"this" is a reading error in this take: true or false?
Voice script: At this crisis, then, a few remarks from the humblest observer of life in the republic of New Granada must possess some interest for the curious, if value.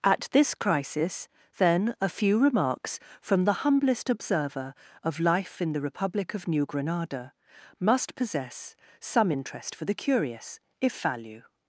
false